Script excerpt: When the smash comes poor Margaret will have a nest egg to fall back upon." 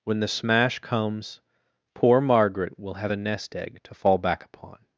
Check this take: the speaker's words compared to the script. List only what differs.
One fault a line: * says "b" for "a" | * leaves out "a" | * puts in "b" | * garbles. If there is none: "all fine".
all fine